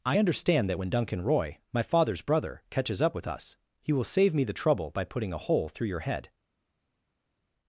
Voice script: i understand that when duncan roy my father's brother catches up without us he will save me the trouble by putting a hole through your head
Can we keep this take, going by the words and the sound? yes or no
no